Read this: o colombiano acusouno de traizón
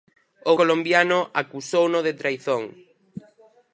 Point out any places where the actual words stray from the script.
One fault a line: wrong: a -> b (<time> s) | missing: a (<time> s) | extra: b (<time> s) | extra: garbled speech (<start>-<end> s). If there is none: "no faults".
no faults